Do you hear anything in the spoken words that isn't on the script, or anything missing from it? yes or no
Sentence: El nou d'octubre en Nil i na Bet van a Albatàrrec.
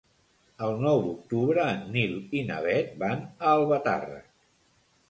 no